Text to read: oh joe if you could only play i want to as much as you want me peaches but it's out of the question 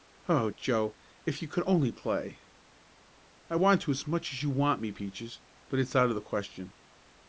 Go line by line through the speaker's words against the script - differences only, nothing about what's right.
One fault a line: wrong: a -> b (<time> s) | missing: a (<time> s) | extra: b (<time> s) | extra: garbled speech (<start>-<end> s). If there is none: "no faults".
no faults